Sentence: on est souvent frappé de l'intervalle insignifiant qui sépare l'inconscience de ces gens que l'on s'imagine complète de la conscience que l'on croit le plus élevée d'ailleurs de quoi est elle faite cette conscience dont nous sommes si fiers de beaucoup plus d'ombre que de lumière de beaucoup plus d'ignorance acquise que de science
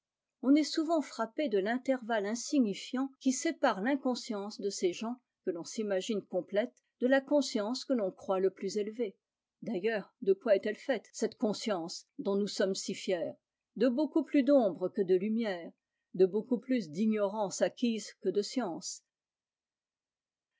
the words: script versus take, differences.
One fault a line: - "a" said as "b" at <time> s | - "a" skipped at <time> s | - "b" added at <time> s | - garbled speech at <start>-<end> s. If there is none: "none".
none